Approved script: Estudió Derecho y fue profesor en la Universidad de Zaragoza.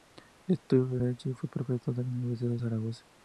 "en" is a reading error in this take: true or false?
false